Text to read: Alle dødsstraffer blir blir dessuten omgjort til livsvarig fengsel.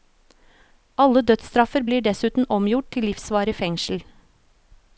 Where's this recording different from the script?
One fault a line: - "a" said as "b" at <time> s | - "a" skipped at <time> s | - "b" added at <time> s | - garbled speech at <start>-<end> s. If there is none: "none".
- "blir" skipped at 2.0 s